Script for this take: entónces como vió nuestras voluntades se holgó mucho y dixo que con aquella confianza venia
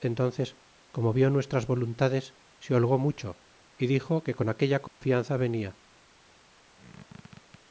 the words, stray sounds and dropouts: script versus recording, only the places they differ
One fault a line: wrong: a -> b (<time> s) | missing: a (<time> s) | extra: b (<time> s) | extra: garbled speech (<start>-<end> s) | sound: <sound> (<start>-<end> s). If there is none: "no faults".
sound: dropout (4.9-5.0 s)
sound: squeak (6.7-7.6 s)